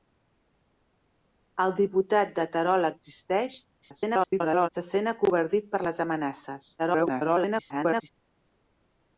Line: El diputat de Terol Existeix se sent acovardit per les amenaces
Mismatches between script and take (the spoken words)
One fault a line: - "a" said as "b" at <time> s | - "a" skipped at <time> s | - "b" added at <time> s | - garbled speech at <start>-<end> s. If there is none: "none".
- garbled speech at 3.8-4.7 s
- garbled speech at 6.8-8.1 s